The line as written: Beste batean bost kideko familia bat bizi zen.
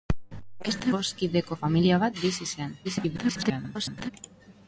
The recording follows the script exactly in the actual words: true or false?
false